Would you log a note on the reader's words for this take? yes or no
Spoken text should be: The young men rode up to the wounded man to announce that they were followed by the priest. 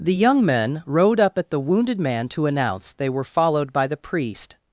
yes